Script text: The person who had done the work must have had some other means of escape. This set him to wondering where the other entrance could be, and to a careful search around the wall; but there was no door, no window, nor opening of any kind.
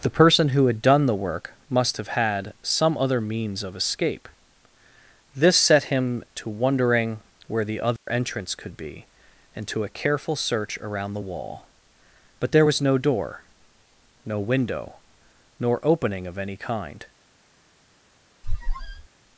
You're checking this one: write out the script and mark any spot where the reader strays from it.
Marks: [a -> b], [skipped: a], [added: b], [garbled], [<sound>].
The person who had done the work must have had some other means of escape. This set him to wondering where the other [dropout] entrance could be, and to a careful search around the wall; but there was no door, no window, nor opening of any kind. [squeak]